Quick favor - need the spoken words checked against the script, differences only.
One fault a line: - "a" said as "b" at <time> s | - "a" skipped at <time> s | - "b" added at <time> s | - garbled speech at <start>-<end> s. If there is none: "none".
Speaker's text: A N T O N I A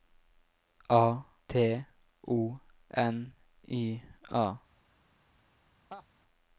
- "N" skipped at 1.2 s